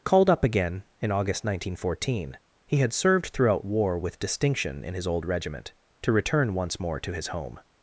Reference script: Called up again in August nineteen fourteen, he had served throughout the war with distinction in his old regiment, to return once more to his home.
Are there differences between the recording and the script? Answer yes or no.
yes